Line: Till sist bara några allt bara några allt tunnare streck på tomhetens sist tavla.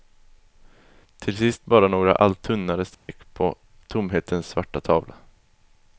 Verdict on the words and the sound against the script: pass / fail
fail